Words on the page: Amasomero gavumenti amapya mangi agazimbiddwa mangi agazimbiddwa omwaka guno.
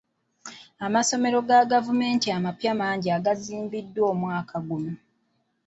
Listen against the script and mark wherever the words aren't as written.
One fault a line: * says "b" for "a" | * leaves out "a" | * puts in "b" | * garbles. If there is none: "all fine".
* puts in "ga"
* leaves out "mangi agazimbiddwa"